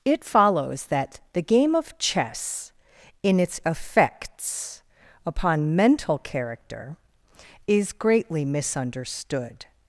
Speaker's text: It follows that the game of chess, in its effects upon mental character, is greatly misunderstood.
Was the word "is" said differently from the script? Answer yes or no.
no